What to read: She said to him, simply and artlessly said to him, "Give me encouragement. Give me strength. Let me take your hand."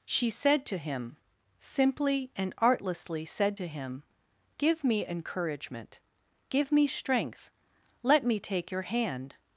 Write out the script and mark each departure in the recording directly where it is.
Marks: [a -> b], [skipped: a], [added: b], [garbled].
She said to him, simply and artlessly said to him, "Give me encouragement. Give me strength. Let me take your hand."